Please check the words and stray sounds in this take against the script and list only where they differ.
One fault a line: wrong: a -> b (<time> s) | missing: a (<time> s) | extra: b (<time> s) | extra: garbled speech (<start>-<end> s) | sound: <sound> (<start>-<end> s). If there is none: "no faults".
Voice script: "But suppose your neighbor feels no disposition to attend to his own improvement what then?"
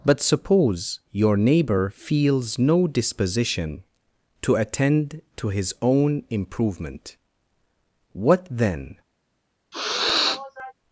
sound: sniff (9.7-10.7 s)